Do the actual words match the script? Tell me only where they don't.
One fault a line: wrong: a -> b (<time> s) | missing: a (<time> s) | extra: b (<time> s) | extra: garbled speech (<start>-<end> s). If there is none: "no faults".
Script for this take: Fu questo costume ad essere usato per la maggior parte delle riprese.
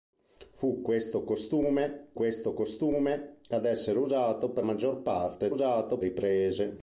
extra: questo costume (2.1 s)
missing: la (4.6 s)
wrong: delle -> usato (5.5 s)